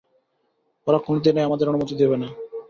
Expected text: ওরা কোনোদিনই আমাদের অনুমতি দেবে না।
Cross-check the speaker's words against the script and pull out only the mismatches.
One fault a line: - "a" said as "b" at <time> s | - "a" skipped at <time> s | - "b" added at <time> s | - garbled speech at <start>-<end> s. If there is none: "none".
none